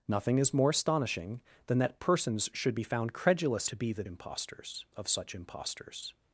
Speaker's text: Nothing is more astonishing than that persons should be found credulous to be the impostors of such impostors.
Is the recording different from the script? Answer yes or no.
no